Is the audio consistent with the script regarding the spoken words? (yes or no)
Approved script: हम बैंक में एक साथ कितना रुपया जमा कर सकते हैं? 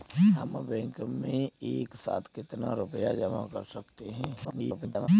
no